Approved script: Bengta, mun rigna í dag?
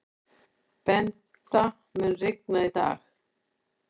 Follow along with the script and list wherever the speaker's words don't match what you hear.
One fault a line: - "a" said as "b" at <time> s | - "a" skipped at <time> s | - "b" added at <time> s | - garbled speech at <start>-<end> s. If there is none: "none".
none